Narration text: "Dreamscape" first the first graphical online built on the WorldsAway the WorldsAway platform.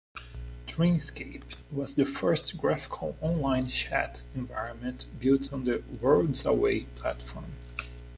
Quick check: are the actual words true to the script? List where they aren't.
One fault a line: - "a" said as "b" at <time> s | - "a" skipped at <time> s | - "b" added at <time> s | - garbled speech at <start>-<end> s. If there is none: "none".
- "first" said as "was" at 1.7 s
- "chat environment" added at 3.7 s
- "the WorldsAway" skipped at 6.9 s